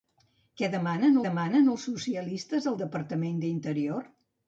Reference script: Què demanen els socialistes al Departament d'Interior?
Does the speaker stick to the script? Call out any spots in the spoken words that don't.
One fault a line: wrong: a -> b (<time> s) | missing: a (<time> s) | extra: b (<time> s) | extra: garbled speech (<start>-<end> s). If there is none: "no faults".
extra: demanen (1.3 s)